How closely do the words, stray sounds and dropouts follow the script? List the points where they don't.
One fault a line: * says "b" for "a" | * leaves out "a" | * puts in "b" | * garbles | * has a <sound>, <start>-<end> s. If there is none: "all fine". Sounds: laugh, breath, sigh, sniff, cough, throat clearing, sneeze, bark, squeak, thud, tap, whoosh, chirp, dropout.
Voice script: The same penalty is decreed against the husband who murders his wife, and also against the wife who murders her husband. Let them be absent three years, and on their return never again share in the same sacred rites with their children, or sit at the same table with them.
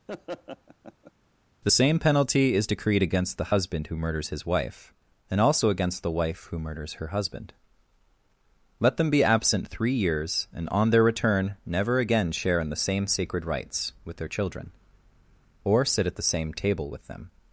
* has a laugh, 0.1-1.1 s